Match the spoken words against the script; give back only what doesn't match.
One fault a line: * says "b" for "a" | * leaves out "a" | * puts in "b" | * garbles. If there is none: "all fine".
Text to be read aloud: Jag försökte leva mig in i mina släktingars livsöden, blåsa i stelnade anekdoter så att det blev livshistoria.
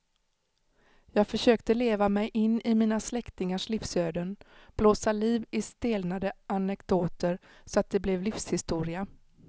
* puts in "liv"